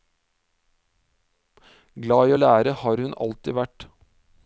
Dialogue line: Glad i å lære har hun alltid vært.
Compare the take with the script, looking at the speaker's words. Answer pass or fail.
pass